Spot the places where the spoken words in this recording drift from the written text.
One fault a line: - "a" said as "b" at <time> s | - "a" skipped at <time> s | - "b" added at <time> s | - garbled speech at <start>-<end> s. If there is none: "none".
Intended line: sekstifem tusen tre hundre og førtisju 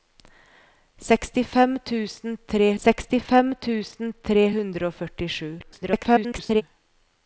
- "sekstifem tusen tre" added at 2.9 s
- garbled speech at 5.6-6.6 s